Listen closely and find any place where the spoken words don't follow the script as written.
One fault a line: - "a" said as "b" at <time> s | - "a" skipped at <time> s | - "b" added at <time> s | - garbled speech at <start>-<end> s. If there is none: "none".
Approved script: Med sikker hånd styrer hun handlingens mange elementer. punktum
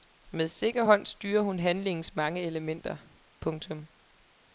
none